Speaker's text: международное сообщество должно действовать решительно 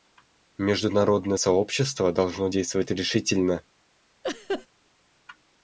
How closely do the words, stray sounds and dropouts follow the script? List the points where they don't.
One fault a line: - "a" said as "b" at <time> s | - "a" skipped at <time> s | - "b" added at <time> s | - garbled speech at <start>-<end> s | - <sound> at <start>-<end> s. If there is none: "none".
- laugh at 4.2-4.7 s